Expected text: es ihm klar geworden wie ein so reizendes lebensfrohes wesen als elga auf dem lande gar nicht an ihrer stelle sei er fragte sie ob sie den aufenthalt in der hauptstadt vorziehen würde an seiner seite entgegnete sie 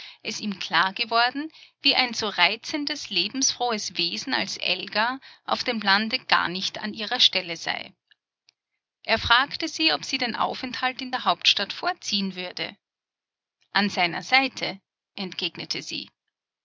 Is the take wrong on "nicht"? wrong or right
right